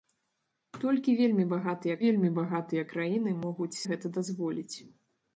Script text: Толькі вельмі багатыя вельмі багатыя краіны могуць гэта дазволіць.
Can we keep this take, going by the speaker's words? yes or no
yes